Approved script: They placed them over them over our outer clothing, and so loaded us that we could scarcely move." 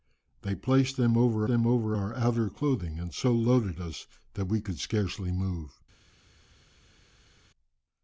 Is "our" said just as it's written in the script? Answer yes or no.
yes